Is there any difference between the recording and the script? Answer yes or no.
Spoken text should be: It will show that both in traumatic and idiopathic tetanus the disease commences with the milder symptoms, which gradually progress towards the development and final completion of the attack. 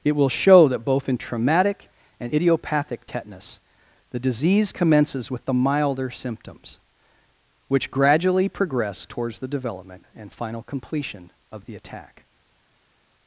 no